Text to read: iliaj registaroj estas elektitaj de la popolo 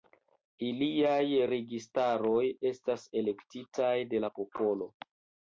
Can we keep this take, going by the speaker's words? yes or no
yes